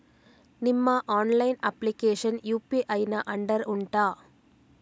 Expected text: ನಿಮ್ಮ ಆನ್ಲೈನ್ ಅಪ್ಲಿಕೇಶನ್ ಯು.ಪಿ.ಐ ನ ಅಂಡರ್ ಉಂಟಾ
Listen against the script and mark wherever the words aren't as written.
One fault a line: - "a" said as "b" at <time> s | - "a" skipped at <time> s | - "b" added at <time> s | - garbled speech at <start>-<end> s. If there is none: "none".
none